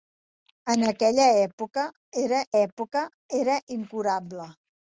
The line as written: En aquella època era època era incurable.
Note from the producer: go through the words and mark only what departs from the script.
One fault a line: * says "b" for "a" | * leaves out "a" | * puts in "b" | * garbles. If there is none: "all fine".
all fine